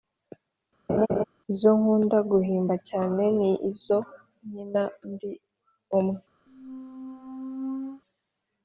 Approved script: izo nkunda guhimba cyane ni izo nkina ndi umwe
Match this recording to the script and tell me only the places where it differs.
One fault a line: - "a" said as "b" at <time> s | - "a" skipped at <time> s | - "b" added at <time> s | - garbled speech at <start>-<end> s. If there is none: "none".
none